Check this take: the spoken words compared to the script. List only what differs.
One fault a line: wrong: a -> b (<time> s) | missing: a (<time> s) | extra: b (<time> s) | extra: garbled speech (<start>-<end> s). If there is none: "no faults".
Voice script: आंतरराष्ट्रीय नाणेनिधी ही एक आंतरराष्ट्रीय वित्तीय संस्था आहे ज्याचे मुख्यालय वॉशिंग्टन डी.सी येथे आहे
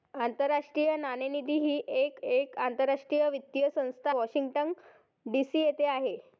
extra: एक (2.2 s)
missing: आहे ज्याचे मुख्यालय (4.1 s)